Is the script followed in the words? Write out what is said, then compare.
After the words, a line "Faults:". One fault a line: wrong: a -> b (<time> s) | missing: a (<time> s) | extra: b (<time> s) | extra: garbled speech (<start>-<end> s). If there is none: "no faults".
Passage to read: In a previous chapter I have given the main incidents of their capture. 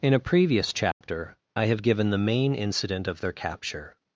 In a previous chapter I have given the main incident of their capture.
Faults:
wrong: incidents -> incident (2.5 s)